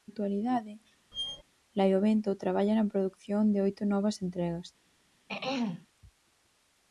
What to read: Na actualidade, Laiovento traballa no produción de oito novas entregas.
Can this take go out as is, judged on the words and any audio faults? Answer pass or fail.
fail